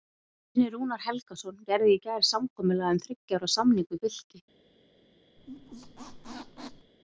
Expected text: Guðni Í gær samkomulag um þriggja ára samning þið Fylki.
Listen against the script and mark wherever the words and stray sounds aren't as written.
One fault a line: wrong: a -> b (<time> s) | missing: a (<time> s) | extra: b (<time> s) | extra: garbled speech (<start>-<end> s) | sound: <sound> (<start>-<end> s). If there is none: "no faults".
extra: Rúnar Helgason gerði (0.8 s)
wrong: þið -> við (3.9 s)
sound: squeak (5.4-6.9 s)